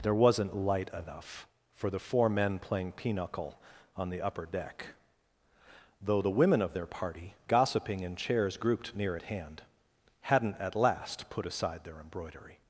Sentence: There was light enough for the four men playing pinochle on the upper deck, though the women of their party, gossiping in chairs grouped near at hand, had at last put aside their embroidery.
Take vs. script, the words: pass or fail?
fail